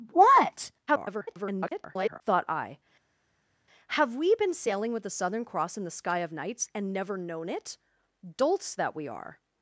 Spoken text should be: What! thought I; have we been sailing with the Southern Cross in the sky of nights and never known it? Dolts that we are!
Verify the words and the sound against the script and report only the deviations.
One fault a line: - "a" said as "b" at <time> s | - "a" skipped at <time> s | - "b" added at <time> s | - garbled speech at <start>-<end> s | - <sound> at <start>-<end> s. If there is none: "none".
- garbled speech at 0.9-2.2 s